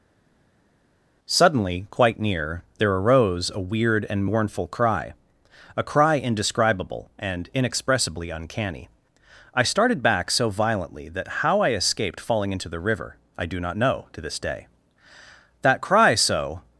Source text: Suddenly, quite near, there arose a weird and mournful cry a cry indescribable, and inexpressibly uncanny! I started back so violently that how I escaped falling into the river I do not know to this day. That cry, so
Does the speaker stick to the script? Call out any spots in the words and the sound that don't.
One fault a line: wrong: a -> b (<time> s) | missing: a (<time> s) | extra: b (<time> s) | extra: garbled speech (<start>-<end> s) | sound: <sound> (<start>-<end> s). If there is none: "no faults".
no faults